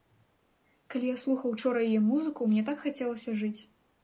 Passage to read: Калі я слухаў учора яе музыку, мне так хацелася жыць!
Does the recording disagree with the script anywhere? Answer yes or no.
no